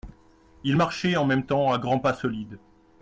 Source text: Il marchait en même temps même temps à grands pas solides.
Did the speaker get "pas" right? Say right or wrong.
right